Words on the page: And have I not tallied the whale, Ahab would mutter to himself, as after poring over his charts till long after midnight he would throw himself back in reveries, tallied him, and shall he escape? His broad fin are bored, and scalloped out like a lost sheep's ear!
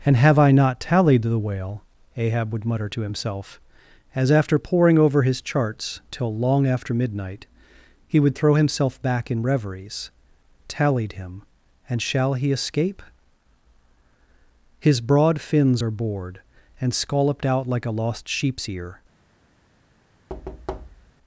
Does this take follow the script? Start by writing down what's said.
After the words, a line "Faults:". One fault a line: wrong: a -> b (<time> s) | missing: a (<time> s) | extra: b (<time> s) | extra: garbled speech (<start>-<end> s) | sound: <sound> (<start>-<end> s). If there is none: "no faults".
And have I not tallied the whale, Ahab would mutter to himself, as after poring over his charts till long after midnight he would throw himself back in reveries, tallied him, and shall he escape? His broad fins are bored, and scalloped out like a lost sheep's ear!
Faults:
wrong: fin -> fins (15.4 s)
sound: thud (20.3-21.1 s)